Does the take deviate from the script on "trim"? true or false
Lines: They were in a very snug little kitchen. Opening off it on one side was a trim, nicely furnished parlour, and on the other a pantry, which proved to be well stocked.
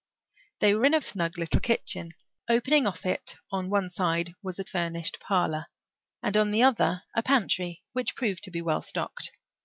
true